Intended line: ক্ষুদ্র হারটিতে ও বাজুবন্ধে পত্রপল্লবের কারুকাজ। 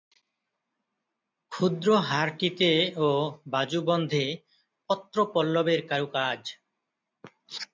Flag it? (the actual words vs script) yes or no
no